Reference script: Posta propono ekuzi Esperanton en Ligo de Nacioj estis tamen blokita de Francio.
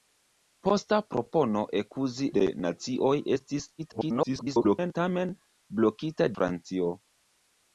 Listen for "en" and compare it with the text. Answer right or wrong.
wrong